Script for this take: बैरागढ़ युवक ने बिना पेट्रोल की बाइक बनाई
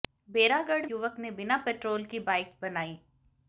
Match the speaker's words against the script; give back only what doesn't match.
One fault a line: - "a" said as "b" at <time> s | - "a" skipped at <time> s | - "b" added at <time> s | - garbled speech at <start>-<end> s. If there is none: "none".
none